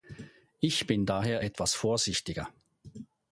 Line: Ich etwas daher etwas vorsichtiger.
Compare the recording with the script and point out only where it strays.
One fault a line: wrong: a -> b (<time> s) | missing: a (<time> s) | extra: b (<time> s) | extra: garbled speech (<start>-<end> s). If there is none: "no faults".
wrong: etwas -> bin (0.9 s)